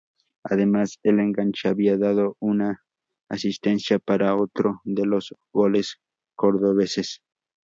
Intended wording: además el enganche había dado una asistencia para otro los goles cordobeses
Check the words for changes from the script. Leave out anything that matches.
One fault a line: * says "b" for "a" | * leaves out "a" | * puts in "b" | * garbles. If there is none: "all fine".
* puts in "de"